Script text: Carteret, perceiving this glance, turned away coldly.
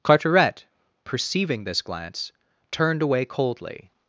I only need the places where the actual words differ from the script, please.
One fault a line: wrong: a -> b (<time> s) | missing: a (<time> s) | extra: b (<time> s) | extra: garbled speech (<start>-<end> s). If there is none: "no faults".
no faults